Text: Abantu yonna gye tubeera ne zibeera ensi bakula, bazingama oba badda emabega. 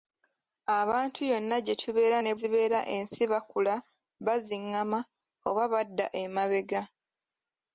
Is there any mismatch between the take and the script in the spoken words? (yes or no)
no